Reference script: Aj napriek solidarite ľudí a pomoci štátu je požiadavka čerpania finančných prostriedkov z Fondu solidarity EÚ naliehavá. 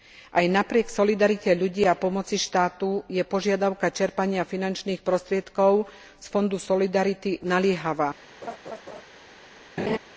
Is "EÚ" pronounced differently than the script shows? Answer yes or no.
yes